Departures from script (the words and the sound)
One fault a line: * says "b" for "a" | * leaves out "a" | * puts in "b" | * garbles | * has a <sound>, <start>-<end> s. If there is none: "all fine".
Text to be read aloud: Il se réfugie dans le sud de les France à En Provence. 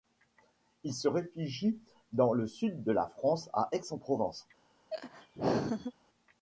* says "la" for "les"
* puts in "Aix"
* has a laugh, 4.9-5.9 s